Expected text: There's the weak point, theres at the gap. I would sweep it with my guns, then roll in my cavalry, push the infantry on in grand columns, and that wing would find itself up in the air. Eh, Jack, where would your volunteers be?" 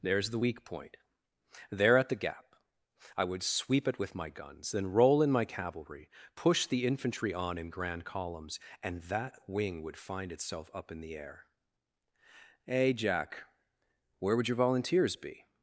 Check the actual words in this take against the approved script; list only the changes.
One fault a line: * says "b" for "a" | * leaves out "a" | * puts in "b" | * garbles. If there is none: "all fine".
* says "there" for "theres"